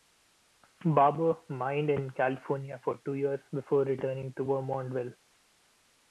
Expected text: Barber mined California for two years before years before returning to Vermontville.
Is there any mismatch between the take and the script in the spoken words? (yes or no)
yes